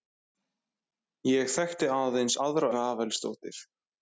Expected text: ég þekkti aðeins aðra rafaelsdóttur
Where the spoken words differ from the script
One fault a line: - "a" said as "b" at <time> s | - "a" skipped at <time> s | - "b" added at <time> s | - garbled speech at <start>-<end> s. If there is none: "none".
none